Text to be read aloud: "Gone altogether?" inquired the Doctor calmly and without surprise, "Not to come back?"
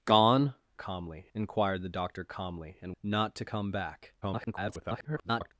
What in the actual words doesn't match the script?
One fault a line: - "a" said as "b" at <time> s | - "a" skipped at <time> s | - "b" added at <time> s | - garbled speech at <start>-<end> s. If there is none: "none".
- "altogether" said as "calmly" at 0.7 s
- "without surprise" skipped at 2.9 s
- garbled speech at 4.2-5.5 s